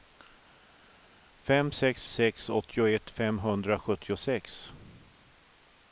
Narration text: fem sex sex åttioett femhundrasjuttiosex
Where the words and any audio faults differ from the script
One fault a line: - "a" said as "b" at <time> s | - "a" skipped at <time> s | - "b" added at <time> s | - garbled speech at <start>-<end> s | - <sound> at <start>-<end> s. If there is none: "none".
none